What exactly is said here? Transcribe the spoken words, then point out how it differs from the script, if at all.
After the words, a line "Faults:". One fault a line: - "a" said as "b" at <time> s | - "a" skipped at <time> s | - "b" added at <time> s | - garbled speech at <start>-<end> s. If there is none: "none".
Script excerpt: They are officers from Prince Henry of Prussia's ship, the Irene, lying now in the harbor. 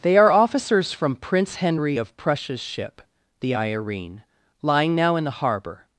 They are officers from Prince Henry of Prussia's ship, the Irene, lying now in the harbor.
Faults:
none